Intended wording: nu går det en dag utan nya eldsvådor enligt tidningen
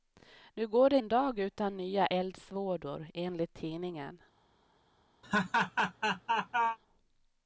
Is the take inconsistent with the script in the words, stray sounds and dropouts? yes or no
yes